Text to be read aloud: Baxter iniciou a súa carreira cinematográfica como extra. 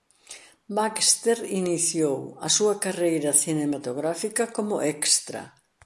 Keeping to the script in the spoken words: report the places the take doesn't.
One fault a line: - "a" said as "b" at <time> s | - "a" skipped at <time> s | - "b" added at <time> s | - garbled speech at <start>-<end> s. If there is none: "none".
none